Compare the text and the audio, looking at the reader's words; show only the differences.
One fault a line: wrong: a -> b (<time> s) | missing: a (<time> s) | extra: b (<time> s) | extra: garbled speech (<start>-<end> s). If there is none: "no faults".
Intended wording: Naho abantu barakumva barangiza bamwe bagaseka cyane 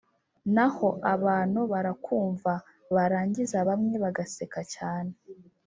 no faults